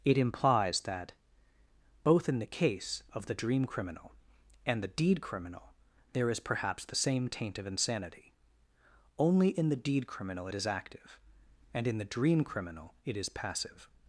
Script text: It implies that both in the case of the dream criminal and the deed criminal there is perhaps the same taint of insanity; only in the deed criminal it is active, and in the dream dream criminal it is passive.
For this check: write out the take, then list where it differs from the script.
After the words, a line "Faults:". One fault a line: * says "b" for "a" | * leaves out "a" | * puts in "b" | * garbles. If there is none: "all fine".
It implies that both in the case of the dream criminal and the deed criminal there is perhaps the same taint of insanity; only in the deed criminal it is active, and in the dream criminal it is passive.
Faults:
* leaves out "dream"